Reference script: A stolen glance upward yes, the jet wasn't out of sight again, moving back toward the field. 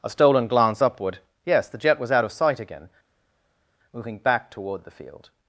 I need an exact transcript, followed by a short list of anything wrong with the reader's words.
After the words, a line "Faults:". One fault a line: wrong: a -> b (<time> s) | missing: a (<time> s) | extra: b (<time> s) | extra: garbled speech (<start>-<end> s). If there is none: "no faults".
A stolen glance upward yes, the jet was out of sight again, moving back toward the field.
Faults:
wrong: wasn't -> was (2.0 s)